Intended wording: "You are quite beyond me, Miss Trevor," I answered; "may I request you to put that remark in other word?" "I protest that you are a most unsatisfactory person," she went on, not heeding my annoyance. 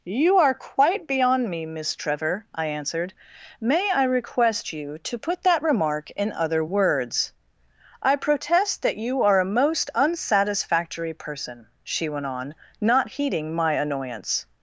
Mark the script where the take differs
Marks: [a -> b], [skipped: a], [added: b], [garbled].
"You are quite beyond me, Miss Trevor," I answered; "may I request you to put that remark in other [word?" -> words] "I protest that you are a most unsatisfactory person," she went on, not heeding my annoyance.